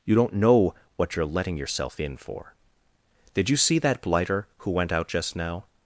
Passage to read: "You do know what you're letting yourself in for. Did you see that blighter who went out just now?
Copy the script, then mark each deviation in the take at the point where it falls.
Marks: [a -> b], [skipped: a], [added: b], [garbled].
"You [do -> don't] know what you're letting yourself in for. Did you see that blighter who went out just now?